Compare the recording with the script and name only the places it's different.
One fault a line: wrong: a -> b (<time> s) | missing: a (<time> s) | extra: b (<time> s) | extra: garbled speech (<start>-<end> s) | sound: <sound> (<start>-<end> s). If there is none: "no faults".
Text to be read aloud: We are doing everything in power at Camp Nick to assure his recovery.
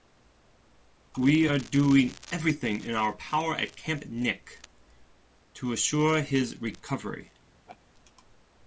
extra: our (3.0 s)
sound: laugh (7.7-7.8 s)